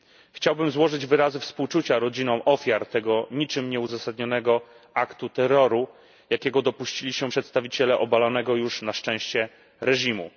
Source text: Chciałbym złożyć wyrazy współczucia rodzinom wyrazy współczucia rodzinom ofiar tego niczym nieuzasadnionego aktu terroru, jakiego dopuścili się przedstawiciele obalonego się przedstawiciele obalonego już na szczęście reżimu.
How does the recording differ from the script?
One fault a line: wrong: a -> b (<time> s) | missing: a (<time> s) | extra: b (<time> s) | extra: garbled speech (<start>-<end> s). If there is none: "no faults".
missing: wyrazy współczucia rodzinom (2.4 s)
missing: się przedstawiciele obalonego (8.6 s)